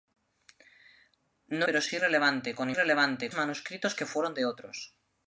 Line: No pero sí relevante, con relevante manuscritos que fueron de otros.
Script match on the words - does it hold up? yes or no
yes